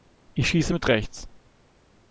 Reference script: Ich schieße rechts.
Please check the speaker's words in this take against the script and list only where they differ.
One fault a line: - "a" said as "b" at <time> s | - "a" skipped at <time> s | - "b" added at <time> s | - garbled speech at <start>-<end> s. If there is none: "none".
- "mit" added at 0.7 s